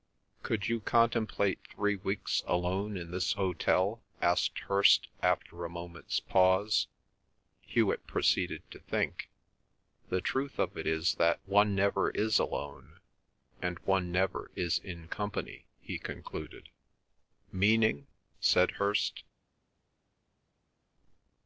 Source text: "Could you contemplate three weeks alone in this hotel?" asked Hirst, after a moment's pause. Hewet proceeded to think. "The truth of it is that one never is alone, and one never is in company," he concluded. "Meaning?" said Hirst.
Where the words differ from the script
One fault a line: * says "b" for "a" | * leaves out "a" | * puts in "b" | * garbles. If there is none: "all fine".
all fine